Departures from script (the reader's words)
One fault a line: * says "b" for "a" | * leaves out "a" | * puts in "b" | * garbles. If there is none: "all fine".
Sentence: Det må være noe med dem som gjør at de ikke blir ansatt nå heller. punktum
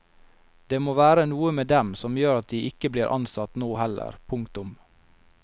all fine